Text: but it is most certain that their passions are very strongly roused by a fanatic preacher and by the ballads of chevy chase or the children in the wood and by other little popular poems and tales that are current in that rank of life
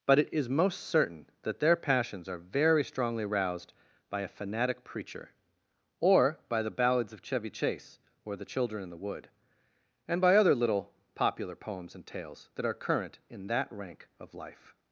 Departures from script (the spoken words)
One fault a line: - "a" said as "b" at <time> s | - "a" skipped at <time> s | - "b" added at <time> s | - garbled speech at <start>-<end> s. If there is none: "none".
- "and" said as "or" at 6.0 s